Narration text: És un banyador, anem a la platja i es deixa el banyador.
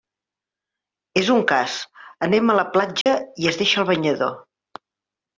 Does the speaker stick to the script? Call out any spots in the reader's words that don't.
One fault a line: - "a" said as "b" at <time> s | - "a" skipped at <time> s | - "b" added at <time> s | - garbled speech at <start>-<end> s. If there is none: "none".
- "banyador" said as "cas" at 1.5 s